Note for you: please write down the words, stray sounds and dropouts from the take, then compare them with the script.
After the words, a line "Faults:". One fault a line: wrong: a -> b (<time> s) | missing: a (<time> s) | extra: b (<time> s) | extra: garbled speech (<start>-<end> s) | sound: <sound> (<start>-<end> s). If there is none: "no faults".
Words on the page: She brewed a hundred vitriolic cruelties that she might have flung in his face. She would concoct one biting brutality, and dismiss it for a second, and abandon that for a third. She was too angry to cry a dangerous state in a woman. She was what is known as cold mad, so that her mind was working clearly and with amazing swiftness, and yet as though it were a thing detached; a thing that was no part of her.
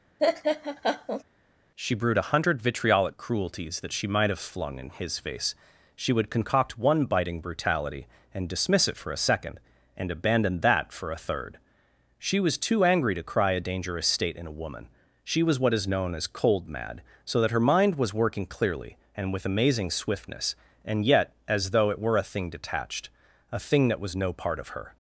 She brewed a hundred vitriolic cruelties that she might have flung in his face. She would concoct one biting brutality, and dismiss it for a second, and abandon that for a third. She was too angry to cry a dangerous state in a woman. She was what is known as cold mad, so that her mind was working clearly and with amazing swiftness, and yet as though it were a thing detached; a thing that was no part of her.
Faults:
sound: laugh (0.2-1.2 s)